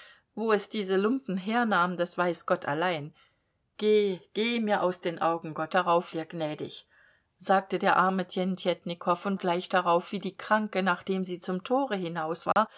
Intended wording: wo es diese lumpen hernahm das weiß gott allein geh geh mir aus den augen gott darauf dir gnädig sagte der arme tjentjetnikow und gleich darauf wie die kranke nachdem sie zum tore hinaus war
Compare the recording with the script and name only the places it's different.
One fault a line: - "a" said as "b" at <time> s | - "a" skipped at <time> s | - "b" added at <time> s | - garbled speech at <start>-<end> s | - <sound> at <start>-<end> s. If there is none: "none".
- dropout at 12.5-12.6 s